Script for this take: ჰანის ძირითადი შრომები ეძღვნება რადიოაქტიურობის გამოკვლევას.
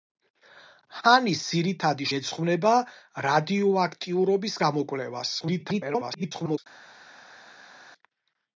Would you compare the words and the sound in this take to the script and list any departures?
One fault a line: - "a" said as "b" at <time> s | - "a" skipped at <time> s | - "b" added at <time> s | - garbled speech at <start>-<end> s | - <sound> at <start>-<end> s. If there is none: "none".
- "შრომები" skipped at 2.1 s
- garbled speech at 5.4-6.6 s